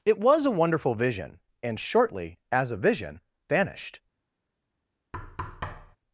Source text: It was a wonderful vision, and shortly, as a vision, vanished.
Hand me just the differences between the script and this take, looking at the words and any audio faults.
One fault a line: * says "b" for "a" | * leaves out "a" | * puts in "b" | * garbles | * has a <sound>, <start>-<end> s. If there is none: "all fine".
* has a thud, 5.1-6.0 s